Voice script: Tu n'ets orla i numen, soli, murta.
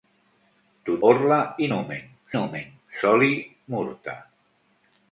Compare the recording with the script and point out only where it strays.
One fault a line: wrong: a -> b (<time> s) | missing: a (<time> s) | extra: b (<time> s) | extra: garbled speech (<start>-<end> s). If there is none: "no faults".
missing: n'ets (0.9 s)
extra: numen (2.4 s)